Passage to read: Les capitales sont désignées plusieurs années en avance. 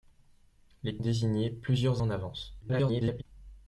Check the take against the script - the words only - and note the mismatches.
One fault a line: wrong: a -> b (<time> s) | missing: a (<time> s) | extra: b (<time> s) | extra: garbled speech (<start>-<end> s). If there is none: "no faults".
missing: capitales sont (1.0 s)
missing: années (2.0 s)
extra: garbled speech (2.6-3.2 s)